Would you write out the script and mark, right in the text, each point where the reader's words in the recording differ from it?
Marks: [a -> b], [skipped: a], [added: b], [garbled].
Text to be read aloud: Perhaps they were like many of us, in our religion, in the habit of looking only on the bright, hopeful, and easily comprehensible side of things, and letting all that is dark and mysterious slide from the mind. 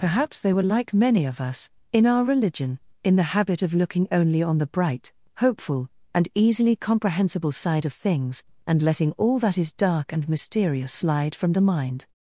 Perhaps they were like many of us, in our religion, in the habit of looking only on the bright, hopeful, and easily comprehensible side of things, and letting all that is dark and mysterious slide from the mind.